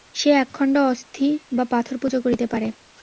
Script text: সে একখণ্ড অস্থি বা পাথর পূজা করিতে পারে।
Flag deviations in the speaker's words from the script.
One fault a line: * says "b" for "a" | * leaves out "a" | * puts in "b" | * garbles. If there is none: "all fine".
all fine